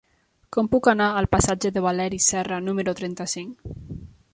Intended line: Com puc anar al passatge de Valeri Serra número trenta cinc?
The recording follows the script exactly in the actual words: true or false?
true